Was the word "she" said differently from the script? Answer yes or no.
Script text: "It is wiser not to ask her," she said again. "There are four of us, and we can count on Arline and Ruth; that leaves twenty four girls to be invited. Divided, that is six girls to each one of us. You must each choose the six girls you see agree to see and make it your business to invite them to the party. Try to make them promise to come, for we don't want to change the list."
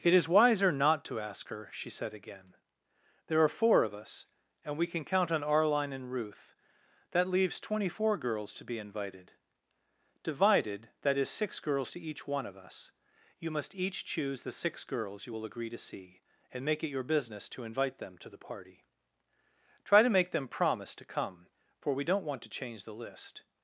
no